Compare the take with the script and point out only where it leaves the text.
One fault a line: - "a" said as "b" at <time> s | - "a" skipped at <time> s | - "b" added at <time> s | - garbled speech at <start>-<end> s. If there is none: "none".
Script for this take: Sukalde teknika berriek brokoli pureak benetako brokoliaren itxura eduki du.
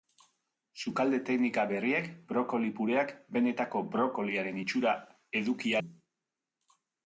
none